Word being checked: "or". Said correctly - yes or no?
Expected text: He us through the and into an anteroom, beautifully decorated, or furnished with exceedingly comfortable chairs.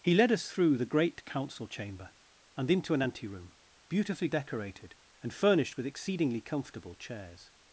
no